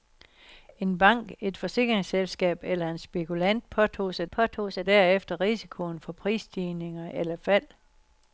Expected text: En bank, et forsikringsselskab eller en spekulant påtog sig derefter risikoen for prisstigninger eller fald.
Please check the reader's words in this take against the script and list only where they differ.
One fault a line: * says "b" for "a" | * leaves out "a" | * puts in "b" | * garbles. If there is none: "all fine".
* puts in "påtog sig"